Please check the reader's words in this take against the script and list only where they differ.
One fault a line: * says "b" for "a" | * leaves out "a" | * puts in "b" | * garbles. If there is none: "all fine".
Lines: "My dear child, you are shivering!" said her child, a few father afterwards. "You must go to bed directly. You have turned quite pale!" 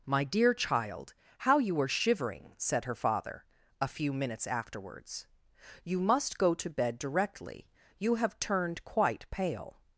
* puts in "how"
* says "father" for "child"
* says "minutes" for "father"